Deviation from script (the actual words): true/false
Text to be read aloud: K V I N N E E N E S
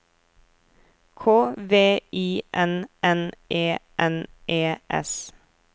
true